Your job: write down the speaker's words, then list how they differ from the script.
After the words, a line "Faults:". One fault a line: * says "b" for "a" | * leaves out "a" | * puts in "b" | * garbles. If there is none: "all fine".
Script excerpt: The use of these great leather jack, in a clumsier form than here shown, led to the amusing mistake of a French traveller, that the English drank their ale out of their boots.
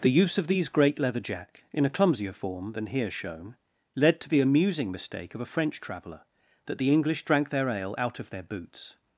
The use of these great leather jack, in a clumsier form than here shown, led to the amusing mistake of a French traveller, that the English drank their ale out of their boots.
Faults:
all fine